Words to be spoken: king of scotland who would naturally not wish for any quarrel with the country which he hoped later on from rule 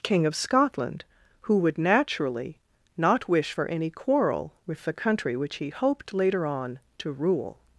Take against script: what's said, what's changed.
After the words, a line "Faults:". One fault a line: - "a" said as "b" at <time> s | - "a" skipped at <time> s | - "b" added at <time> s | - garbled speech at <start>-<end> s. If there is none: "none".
king of scotland who would naturally not wish for any quarrel with the country which he hoped later on to rule
Faults:
- "from" said as "to" at 7.0 s